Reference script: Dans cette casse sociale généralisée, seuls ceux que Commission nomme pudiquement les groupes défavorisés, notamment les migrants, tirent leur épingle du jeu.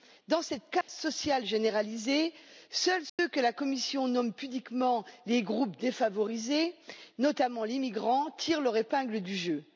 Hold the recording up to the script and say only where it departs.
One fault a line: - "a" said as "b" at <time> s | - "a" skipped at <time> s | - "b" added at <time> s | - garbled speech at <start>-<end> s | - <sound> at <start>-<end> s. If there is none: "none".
- dropout at 0.8-0.9 s
- dropout at 3.1-3.2 s
- "la" added at 3.4 s